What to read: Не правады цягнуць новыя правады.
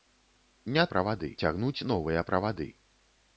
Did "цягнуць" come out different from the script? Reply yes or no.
no